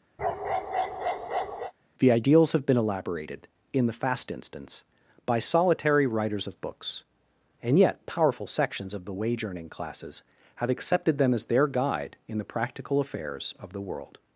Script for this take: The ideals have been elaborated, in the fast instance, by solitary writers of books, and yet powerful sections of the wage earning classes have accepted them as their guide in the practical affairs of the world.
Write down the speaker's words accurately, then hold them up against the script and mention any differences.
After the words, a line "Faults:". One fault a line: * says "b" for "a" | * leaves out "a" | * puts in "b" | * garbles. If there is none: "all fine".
The ideals have been elaborated, in the fast instance, by solitary writers of books, and yet powerful sections of the wage earning classes have accepted them as their guide in the practical affairs of the world.
Faults:
all fine